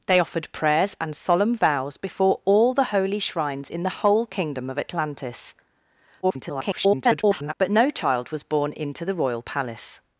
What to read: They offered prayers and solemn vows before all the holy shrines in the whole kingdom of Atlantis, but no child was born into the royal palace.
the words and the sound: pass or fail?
fail